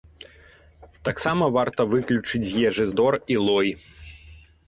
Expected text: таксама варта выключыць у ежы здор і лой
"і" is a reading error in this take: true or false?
false